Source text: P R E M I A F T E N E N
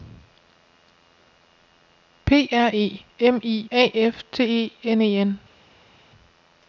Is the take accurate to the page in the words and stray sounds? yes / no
yes